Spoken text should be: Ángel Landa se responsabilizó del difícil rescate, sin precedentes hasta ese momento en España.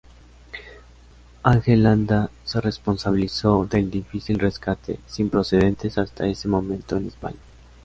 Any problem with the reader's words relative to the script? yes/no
no